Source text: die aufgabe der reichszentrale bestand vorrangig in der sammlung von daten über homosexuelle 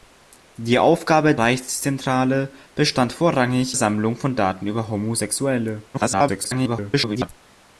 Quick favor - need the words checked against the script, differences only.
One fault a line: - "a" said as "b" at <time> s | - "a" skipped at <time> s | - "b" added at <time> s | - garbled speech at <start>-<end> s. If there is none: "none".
- "der" skipped at 1.4 s
- "in der" skipped at 3.8 s
- garbled speech at 5.9-7.3 s